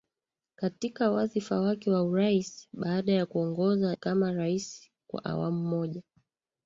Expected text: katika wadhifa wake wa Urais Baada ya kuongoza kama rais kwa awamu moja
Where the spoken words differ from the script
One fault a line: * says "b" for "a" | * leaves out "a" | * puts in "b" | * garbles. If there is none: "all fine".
all fine